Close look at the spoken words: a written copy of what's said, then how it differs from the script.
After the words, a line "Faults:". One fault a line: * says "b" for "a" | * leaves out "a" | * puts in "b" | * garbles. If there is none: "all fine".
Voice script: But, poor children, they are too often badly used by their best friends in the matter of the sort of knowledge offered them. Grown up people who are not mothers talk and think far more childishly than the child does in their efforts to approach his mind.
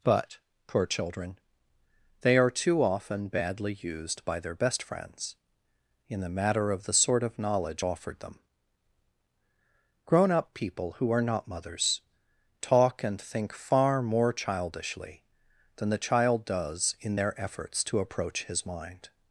But, poor children, they are too often badly used by their best friends in the matter of the sort of knowledge offered them. Grown up people who are not mothers talk and think far more childishly than the child does in their efforts to approach his mind.
Faults:
all fine